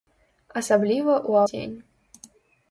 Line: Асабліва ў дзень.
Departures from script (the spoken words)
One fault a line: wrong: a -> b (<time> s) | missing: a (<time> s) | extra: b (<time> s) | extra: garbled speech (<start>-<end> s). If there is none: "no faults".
no faults